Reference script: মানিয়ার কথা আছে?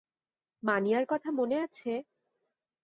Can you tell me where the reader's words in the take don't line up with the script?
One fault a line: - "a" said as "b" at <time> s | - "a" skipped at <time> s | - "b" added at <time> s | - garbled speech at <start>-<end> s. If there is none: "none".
- "মনে" added at 1.3 s